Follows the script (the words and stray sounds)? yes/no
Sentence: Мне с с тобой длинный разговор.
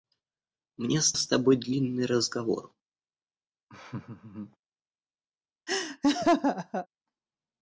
no